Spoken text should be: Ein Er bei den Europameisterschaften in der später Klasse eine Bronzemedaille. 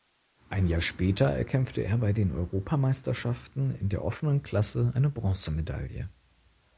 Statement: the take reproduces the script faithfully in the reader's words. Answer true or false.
false